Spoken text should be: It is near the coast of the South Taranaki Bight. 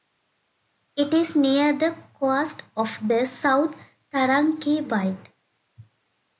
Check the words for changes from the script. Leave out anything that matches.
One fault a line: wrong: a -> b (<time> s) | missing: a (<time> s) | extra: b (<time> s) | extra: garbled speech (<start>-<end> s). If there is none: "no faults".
no faults